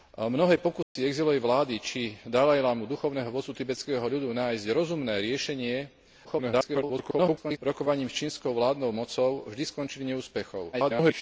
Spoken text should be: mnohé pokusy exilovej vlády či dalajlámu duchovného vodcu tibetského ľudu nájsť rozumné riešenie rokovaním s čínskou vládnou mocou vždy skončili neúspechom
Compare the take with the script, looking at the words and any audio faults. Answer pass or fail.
fail